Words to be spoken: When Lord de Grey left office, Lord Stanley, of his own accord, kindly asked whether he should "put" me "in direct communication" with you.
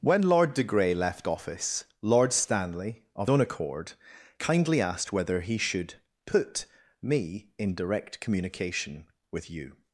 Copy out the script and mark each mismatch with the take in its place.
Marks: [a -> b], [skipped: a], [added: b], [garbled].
When Lord de Grey left office, Lord Stanley, of [skipped: his] own accord, kindly asked whether he should "put" me "in direct communication" with you.